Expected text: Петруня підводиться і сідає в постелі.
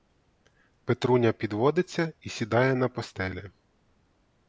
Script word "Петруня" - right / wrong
right